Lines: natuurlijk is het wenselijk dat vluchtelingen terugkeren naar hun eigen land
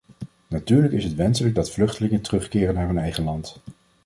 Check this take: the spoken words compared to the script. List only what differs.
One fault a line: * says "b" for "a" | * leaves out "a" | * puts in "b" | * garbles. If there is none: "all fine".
all fine